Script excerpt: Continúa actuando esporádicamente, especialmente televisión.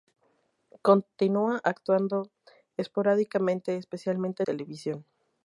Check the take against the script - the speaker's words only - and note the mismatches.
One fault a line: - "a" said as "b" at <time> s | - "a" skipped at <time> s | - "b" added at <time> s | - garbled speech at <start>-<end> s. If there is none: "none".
none